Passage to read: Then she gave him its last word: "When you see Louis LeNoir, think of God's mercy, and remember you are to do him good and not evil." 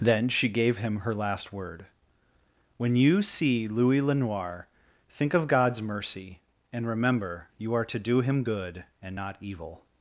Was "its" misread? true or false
true